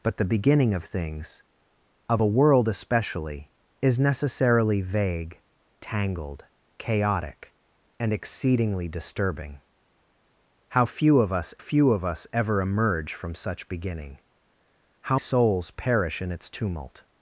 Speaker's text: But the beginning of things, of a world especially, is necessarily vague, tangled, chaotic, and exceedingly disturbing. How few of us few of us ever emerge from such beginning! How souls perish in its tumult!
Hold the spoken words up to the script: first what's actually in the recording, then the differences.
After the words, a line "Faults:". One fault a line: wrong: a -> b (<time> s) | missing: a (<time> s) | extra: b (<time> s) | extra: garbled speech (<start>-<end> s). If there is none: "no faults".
But the beginning of things, of a world especially, is necessarily vague, tangled, chaotic, and exceedingly disturbing. How few of us few of us ever emerge from such beginning! How souls perish in its tumult!
Faults:
no faults